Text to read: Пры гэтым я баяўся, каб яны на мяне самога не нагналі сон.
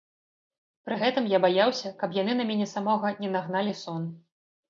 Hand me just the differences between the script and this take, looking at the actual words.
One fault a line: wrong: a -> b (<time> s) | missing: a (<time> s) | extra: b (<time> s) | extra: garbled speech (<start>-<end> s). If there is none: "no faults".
no faults